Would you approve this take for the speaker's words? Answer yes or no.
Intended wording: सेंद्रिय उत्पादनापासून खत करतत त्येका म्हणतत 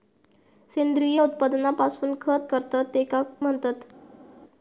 yes